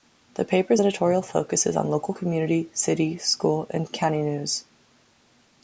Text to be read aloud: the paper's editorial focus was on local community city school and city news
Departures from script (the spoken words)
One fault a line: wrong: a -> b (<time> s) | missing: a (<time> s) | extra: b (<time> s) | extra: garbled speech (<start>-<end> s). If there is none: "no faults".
wrong: was -> is (1.6 s)
wrong: city -> county (3.9 s)